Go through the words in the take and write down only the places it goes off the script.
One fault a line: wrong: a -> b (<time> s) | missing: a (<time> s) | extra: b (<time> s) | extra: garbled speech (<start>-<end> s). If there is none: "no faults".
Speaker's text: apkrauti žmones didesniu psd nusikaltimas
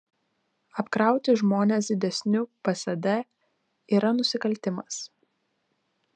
extra: yra (4.0 s)